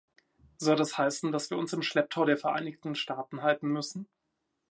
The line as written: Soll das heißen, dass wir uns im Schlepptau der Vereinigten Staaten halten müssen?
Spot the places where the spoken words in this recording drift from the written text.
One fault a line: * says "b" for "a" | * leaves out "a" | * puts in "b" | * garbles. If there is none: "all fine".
all fine